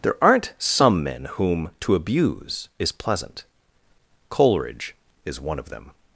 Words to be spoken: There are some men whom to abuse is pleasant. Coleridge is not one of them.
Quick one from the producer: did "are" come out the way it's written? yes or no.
no